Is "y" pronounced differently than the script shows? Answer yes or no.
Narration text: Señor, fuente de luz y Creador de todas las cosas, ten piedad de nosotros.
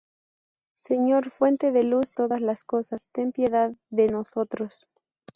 yes